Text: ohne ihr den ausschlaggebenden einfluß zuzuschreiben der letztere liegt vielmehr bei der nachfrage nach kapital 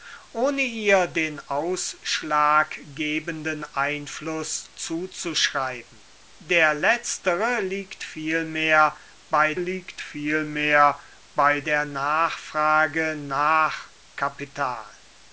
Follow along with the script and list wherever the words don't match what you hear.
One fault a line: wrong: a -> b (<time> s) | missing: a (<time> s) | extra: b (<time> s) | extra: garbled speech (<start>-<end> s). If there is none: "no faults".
extra: liegt vielmehr bei (9.6 s)